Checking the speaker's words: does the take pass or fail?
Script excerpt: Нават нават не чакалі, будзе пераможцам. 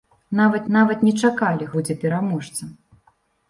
pass